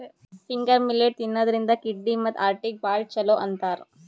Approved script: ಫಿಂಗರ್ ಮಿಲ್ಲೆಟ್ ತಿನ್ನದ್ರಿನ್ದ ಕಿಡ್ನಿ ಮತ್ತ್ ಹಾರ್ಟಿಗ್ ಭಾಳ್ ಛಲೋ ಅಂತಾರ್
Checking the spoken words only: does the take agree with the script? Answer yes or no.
yes